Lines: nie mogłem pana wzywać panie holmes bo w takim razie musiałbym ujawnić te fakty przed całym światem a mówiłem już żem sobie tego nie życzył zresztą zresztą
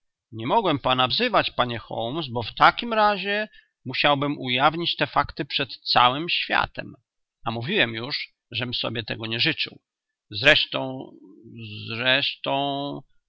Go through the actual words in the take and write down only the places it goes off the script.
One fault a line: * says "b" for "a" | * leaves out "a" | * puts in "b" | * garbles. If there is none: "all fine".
all fine